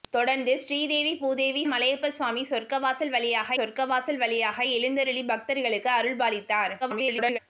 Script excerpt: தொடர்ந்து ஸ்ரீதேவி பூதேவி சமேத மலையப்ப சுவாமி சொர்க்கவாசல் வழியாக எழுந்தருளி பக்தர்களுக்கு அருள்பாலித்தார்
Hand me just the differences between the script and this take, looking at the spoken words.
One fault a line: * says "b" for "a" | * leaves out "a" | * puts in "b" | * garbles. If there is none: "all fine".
* leaves out "சமேத"
* puts in "சொர்க்கவாசல் வழியாக"
* garbles